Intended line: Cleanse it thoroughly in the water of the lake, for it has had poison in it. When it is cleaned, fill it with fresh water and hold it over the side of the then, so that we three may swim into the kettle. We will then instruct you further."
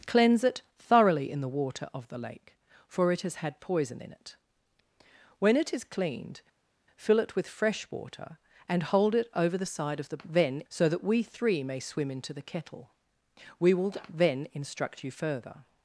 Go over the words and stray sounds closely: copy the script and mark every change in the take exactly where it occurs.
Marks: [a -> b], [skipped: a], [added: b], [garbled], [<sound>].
Cleanse it thoroughly in the water of the lake, for it has had poison in it. When it is cleaned, fill it with fresh water and hold it over the side of the then, so that we three may swim into the kettle. We will then instruct you further."